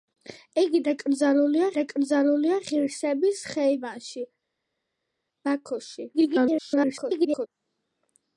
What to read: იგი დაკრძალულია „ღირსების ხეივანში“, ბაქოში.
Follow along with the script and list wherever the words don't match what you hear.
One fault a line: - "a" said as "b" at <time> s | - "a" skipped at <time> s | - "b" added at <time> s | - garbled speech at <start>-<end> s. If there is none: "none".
- "დაკრძალულია" added at 1.7 s
- garbled speech at 6.1-7.5 s